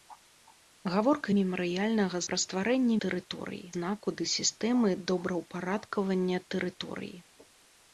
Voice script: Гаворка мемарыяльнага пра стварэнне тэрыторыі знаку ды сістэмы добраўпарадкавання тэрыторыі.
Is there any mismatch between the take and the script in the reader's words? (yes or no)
no